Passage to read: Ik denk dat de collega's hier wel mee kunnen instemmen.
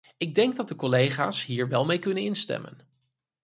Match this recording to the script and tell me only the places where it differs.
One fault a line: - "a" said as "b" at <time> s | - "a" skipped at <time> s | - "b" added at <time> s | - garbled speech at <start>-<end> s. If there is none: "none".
none